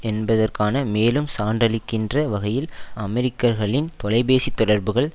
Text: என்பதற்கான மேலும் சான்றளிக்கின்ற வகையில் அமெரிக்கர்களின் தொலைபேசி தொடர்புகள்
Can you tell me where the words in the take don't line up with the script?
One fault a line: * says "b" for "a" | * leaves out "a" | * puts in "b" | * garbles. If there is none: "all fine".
all fine